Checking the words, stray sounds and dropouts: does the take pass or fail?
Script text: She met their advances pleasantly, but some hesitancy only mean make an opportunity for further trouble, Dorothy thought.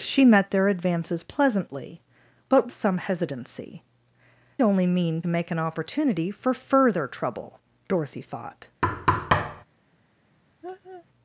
fail